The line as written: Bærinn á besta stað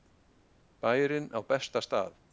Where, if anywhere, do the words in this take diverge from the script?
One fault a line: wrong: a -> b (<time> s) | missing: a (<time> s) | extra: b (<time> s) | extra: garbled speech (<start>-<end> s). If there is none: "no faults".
no faults